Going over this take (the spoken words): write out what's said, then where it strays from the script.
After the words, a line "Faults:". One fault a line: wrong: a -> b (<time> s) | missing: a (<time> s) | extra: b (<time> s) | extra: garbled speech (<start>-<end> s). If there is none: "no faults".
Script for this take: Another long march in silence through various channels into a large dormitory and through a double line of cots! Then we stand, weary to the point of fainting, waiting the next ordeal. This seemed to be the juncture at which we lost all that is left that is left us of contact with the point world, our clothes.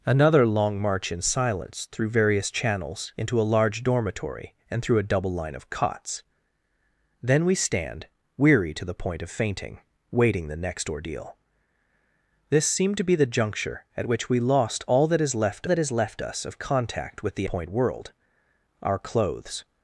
Another long march in silence through various channels into a large dormitory and through a double line of cots! Then we stand, weary to the point of fainting, waiting the next ordeal. This seemed to be the juncture at which we lost all that is left that is left us of contact with the point world, our clothes.
Faults:
no faults